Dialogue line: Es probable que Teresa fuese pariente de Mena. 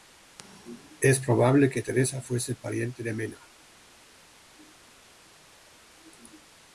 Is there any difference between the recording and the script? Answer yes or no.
no